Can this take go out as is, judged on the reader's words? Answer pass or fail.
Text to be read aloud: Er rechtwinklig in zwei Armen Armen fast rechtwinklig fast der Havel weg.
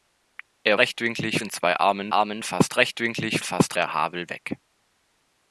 pass